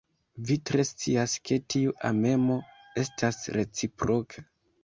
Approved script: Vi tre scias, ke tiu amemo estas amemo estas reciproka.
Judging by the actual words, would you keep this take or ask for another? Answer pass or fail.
fail